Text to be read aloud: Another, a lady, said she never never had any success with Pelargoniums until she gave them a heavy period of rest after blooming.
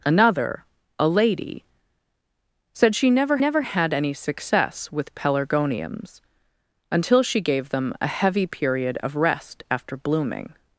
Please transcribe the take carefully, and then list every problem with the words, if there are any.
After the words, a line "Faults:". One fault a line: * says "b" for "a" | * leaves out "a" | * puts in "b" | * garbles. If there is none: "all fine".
Another, a lady, said she never never had any success with Pelargoniums until she gave them a heavy period of rest after blooming.
Faults:
all fine